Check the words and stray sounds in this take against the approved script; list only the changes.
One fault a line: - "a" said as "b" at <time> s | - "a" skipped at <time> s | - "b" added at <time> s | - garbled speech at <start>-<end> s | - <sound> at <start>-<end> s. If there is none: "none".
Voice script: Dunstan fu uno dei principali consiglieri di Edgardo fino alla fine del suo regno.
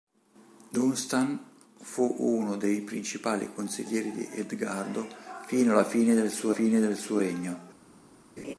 - "fine del suo" added at 6.5 s
- laugh at 8.4-8.5 s